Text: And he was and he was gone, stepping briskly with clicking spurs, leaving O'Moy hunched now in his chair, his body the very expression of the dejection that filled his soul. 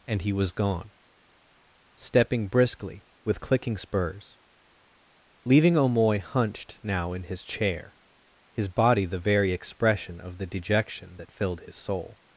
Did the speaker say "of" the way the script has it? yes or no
yes